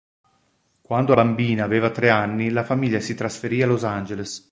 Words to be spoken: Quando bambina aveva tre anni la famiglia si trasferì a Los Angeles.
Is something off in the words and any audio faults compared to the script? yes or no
no